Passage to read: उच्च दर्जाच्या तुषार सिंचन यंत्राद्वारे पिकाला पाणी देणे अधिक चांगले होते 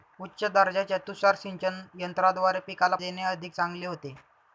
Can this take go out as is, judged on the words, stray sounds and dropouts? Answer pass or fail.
fail